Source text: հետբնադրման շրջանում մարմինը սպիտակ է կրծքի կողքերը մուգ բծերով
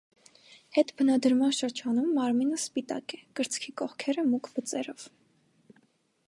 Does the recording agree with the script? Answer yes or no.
yes